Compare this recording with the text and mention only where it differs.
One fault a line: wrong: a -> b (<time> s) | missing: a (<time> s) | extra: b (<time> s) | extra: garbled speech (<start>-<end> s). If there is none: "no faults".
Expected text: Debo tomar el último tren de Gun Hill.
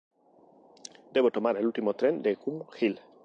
no faults